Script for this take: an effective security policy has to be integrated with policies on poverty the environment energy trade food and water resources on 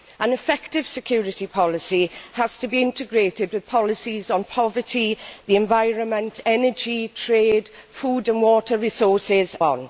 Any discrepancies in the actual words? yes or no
no